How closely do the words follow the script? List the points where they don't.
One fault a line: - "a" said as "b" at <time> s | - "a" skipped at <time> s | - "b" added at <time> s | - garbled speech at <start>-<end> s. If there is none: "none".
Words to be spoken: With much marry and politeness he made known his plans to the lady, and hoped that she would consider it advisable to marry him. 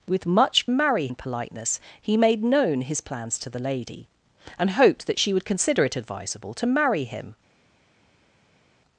none